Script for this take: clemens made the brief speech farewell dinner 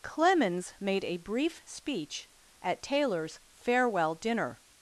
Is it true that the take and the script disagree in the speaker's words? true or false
true